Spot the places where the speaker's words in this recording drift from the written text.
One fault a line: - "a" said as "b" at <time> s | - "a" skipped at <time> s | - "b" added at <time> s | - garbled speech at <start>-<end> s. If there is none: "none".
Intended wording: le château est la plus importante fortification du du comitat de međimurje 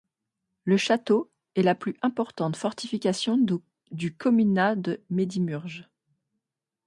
- "du" skipped at 4.2 s